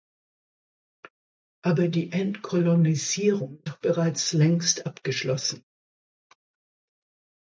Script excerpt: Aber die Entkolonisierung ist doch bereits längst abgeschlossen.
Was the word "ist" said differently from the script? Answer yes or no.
yes